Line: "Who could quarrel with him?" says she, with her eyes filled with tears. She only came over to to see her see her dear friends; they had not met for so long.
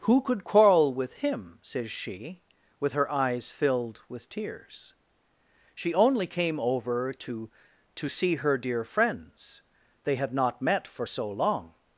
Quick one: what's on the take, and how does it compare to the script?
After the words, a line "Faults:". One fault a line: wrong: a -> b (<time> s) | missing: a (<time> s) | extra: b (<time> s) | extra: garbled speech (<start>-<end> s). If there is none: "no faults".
"Who could quarrel with him?" says she, with her eyes filled with tears. She only came over to to see her dear friends; they had not met for so long.
Faults:
missing: see her (8.6 s)